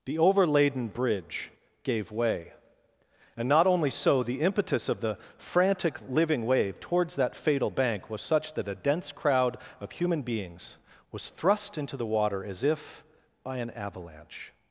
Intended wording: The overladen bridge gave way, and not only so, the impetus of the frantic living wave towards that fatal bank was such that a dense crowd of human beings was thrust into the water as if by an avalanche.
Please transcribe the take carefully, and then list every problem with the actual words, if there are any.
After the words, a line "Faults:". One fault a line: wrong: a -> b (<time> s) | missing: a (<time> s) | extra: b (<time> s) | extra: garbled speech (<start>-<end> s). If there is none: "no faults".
The overladen bridge gave way, and not only so, the impetus of the frantic living wave towards that fatal bank was such that a dense crowd of human beings was thrust into the water as if by an avalanche.
Faults:
no faults